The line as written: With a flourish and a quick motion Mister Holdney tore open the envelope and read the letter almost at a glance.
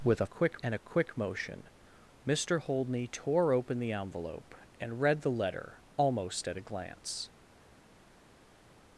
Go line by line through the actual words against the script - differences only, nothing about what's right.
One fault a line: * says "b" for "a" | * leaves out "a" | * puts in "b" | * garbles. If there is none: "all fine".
* says "quick" for "flourish"